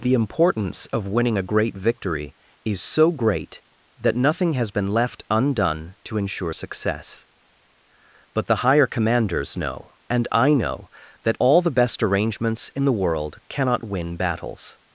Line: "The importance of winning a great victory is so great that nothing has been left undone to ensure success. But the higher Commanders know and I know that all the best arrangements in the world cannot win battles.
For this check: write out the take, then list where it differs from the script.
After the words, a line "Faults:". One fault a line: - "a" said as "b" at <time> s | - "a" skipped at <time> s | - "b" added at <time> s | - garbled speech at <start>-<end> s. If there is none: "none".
"The importance of winning a great victory is so great that nothing has been left undone to ensure success. But the higher Commanders know and I know that all the best arrangements in the world cannot win battles.
Faults:
none